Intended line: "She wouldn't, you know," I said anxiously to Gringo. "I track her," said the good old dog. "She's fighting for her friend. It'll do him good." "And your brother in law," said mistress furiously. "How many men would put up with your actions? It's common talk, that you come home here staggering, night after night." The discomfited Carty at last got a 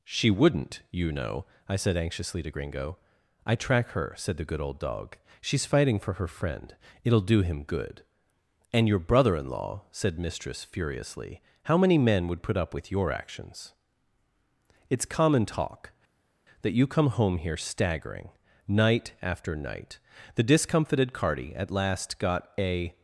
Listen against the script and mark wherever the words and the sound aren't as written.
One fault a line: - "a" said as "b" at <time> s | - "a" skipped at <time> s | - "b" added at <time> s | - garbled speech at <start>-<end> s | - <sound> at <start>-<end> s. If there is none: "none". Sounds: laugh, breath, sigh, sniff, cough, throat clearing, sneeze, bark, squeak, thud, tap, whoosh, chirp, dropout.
none